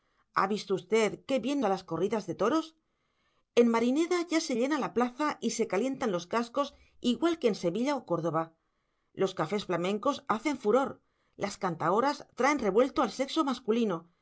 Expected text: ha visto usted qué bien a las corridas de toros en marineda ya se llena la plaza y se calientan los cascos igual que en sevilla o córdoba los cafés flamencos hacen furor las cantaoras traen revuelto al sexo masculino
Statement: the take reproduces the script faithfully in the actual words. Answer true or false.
true